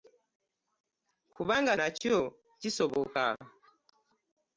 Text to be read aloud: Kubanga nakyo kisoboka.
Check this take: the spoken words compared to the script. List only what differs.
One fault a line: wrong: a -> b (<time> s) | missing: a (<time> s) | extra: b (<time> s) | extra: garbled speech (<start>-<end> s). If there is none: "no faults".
no faults